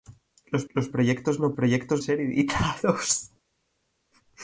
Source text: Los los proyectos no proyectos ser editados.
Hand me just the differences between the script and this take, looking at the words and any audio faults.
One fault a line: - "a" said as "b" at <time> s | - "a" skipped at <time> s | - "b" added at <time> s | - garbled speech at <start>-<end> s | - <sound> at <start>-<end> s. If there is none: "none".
none